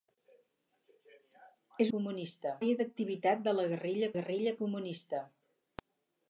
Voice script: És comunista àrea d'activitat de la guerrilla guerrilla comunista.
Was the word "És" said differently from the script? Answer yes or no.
no